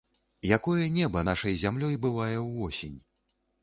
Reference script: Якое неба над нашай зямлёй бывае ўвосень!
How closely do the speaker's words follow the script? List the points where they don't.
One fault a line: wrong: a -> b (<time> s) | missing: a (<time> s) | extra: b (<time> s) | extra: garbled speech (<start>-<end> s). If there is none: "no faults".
missing: над (1.2 s)